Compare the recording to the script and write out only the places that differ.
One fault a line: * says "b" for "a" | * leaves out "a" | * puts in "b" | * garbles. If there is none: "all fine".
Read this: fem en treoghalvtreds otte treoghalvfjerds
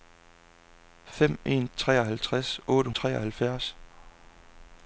all fine